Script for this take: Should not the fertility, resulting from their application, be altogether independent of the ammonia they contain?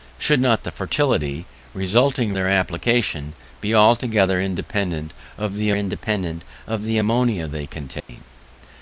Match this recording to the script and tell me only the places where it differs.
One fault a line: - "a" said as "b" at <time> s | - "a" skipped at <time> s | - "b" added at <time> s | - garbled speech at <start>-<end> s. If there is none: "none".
- "from" skipped at 2.3 s
- "independent of the" added at 5.7 s